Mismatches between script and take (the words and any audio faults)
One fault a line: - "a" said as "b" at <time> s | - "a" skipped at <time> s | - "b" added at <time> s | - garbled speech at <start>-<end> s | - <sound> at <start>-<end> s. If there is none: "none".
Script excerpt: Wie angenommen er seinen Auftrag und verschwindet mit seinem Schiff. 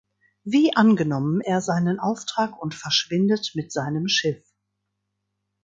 none